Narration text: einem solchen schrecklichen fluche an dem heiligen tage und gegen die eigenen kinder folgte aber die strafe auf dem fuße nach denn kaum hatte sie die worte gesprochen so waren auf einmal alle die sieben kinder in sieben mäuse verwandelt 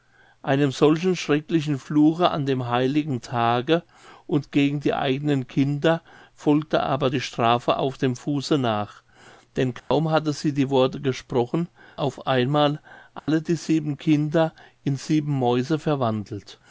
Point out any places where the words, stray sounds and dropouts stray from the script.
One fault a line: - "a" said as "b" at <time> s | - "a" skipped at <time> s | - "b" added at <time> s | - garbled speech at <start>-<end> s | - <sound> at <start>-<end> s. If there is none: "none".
- dropout at 9.8-9.9 s
- "so waren" skipped at 11.7 s
- dropout at 13.2-13.3 s